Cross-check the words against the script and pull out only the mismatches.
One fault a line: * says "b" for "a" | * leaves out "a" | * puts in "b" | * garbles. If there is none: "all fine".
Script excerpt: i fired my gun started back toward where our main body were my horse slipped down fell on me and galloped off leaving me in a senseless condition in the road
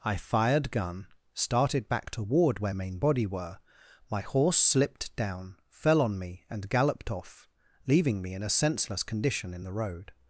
* leaves out "my"
* leaves out "our"